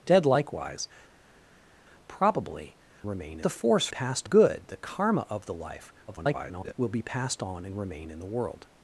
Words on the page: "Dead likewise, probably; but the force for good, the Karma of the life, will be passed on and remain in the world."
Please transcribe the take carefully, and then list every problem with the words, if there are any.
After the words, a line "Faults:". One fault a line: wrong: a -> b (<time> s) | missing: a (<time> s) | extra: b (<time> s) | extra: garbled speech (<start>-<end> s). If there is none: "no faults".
"Dead likewise, probably; remain the force passed good, the Karma of the life, [garbled] will be passed on and remain in the world."
Faults:
wrong: but -> remain (3.1 s)
wrong: for -> passed (3.9 s)
extra: garbled speech (6.1-6.7 s)